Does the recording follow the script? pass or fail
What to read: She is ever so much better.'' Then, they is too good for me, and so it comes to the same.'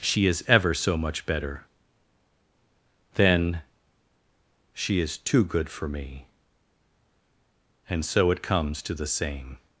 fail